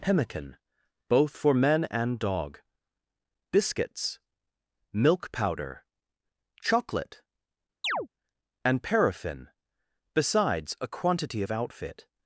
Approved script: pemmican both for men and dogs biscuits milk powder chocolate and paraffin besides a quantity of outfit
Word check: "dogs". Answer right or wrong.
wrong